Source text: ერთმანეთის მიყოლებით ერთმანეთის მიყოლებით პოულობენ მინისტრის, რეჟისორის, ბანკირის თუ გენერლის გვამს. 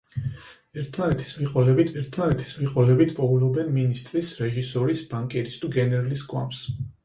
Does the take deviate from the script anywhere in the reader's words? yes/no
no